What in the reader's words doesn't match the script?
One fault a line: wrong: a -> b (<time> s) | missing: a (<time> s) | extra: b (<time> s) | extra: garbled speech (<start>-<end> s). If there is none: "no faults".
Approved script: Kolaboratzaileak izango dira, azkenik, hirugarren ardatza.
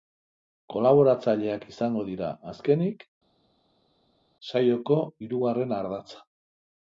extra: saioko (4.5 s)